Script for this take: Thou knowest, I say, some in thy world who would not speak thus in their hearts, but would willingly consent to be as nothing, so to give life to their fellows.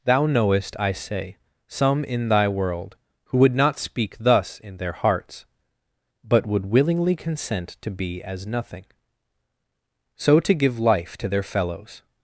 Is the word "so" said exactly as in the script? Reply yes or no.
yes